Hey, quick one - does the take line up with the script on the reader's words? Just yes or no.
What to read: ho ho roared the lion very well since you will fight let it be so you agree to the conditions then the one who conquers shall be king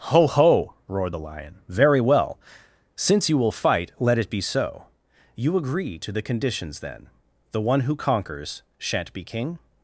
no